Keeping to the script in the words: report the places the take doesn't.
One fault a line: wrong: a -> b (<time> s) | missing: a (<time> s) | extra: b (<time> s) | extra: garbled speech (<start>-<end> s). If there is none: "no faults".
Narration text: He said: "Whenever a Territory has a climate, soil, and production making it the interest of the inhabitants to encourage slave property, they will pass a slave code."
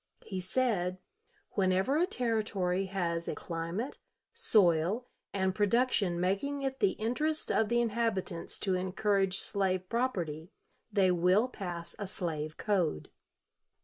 no faults